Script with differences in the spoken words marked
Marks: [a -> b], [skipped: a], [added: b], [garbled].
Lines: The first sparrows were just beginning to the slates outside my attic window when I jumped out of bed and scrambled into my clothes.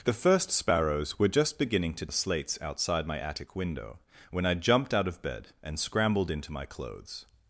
The first sparrows were just beginning to the slates outside my attic window when I jumped out of bed and scrambled into my clothes.